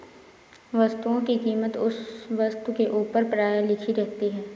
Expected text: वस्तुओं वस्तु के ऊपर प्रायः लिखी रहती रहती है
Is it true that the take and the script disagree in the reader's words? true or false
true